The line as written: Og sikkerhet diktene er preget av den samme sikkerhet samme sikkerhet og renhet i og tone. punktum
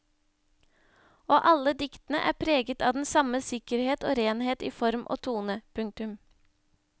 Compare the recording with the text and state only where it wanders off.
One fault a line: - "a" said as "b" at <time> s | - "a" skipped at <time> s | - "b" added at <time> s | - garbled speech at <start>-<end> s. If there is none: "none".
- "sikkerhet" said as "alle" at 1.5 s
- "samme sikkerhet" skipped at 4.1 s
- "form" added at 4.8 s